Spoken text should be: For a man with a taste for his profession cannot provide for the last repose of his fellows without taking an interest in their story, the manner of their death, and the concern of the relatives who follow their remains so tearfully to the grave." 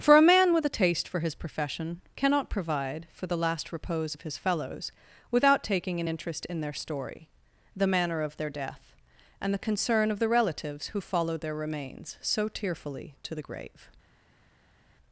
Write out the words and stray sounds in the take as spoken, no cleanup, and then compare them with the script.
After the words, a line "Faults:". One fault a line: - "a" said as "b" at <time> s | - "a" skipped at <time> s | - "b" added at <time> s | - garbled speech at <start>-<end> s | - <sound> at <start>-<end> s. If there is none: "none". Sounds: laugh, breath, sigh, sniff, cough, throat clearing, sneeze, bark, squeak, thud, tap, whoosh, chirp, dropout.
For a man with a taste for his profession cannot provide for the last repose of his fellows without taking an interest in their story, the manner of their death, and the concern of the relatives who follow their remains so tearfully to the grave."
Faults:
none